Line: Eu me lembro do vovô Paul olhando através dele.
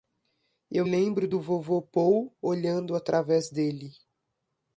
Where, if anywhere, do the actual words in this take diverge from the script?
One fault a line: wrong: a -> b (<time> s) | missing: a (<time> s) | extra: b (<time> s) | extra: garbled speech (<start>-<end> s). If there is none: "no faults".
missing: me (0.8 s)